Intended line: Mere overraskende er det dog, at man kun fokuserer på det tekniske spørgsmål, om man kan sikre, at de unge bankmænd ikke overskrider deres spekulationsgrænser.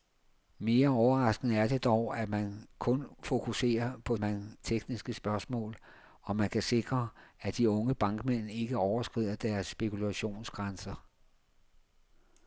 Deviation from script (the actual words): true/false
true